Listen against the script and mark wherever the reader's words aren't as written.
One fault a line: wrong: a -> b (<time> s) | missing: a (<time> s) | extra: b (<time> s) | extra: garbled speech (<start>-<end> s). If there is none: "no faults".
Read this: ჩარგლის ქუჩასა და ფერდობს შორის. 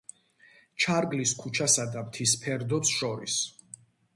extra: მთის (2.1 s)